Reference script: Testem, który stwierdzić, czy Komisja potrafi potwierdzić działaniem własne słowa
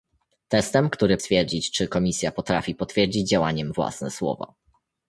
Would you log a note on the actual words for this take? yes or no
no